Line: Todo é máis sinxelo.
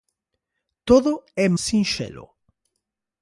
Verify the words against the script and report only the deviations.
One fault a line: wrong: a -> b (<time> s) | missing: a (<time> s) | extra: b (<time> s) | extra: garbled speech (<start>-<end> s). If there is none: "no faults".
missing: máis (1.5 s)